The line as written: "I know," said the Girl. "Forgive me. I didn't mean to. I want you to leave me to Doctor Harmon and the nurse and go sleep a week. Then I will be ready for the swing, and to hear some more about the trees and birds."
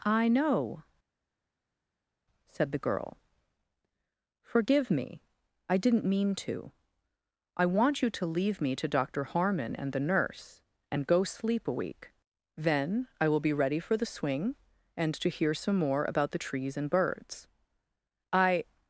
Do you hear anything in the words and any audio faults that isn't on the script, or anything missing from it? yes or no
yes